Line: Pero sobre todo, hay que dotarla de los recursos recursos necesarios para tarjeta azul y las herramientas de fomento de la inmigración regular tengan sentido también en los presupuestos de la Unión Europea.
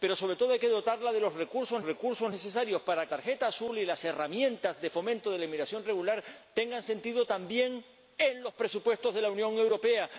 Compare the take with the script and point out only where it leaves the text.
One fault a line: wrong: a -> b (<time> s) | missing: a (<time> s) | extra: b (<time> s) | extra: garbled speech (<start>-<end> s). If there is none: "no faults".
no faults